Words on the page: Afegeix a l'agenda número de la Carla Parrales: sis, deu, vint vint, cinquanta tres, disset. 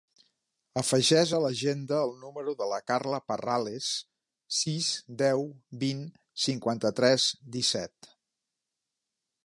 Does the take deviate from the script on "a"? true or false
false